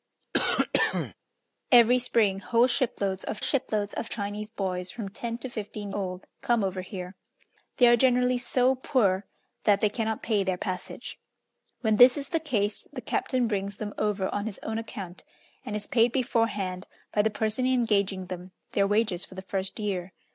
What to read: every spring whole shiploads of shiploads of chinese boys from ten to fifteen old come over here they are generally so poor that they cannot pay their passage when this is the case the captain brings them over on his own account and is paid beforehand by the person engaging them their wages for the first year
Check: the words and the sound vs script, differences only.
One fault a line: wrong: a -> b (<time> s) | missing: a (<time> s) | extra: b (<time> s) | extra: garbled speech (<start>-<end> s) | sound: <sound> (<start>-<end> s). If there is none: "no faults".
sound: cough (0.3-1.1 s)